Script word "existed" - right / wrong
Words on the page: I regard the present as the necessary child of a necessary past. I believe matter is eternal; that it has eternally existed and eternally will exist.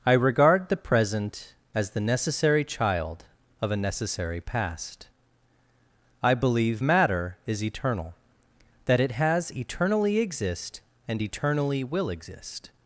wrong